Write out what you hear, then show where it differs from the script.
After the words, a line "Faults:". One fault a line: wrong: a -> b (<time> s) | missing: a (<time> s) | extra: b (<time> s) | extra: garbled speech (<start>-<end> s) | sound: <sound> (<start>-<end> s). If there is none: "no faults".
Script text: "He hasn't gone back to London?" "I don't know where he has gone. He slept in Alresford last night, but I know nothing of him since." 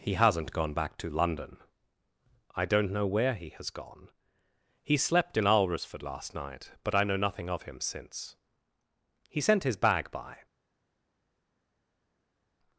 "He hasn't gone back to London?" "I don't know where he has gone. He slept in Alresford last night, but I know nothing of him since." "He sent his bag by
Faults:
extra: He sent his bag by (9.3 s)